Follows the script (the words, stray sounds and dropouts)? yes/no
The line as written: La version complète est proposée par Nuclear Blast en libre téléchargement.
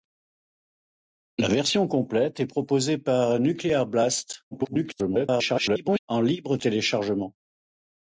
no